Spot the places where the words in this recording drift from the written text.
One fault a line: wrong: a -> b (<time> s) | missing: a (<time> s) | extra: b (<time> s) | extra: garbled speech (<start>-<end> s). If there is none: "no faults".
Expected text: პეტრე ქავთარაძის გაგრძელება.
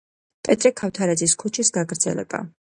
extra: ქუჩის (1.4 s)